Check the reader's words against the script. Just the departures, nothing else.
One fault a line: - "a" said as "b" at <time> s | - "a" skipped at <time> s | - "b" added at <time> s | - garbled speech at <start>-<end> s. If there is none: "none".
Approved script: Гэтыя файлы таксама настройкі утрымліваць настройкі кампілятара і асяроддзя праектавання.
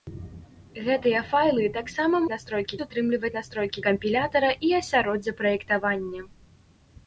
none